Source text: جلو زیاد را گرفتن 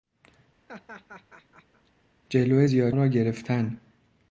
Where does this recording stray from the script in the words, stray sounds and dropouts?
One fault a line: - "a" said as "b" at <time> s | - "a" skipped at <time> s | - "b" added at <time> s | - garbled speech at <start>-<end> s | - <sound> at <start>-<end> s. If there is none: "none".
- laugh at 0.7-1.9 s